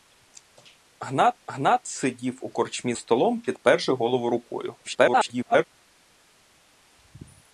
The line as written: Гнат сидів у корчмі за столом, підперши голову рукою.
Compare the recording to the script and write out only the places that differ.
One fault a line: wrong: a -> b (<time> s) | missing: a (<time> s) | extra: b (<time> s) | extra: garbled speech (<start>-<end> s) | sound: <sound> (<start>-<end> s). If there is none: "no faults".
extra: гнат (1.5 s)
missing: за (2.9 s)
extra: garbled speech (4.8-5.6 s)